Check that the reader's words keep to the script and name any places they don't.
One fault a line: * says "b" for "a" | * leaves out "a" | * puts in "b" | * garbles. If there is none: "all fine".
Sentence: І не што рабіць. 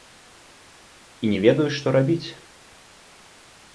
* puts in "ведаю"